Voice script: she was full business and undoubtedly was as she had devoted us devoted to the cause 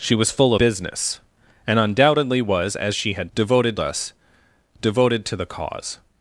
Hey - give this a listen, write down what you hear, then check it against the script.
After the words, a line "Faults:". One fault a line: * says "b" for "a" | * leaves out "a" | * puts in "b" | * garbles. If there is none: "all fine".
she was full business and undoubtedly was as she had devoted us devoted to the cause
Faults:
all fine